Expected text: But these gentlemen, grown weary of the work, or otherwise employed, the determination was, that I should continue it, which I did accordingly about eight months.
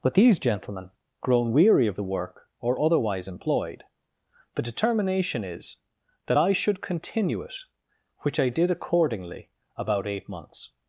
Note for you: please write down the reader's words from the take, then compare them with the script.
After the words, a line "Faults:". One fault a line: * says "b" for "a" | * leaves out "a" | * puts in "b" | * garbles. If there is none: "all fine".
But these gentlemen, grown weary of the work, or otherwise employed, the determination is, that I should continue it, which I did accordingly about eight months.
Faults:
* says "is" for "was"